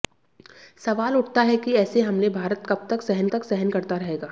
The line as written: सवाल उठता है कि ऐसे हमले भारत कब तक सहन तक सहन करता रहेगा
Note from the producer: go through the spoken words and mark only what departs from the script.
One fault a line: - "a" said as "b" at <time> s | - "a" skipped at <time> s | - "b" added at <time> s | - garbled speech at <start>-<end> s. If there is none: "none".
none